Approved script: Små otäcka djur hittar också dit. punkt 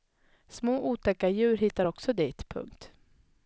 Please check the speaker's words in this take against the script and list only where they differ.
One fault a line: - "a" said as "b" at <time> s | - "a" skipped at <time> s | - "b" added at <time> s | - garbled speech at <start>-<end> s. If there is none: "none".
none